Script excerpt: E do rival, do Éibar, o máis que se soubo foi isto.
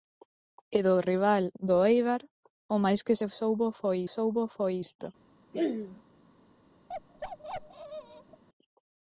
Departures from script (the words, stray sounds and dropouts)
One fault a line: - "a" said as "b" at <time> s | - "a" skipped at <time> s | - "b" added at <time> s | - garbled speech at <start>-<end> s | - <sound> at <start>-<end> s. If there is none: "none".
- "soubo foi" added at 4.1 s
- throat clearing at 5.5-6.0 s
- bark at 6.9-8.4 s